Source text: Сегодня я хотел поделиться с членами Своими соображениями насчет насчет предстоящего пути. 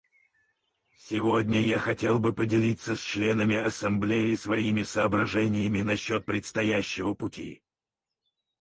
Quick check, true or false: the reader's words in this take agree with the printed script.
false